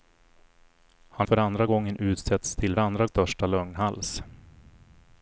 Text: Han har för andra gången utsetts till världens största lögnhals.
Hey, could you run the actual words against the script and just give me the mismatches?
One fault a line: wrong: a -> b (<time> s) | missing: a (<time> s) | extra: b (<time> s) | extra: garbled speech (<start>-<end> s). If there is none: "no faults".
missing: har (1.3 s)
wrong: världens -> andra (2.8 s)